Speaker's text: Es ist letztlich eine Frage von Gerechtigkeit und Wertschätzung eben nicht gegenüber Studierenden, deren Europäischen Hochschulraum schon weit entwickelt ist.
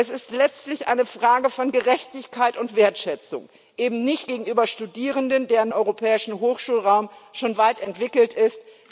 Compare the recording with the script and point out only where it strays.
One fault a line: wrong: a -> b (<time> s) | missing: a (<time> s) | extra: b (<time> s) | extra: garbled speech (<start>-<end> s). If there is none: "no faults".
no faults